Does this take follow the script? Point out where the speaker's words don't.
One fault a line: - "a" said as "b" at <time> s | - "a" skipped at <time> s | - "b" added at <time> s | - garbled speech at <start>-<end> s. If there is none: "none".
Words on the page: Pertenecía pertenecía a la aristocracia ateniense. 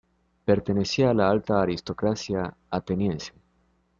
- "pertenecía" skipped at 1.1 s
- "alta" added at 1.3 s